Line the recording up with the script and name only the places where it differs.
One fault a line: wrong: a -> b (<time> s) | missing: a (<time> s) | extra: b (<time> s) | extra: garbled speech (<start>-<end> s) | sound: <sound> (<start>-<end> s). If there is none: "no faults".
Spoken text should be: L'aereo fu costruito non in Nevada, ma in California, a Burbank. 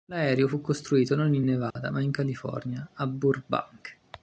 sound: dropout (1.7-1.8 s)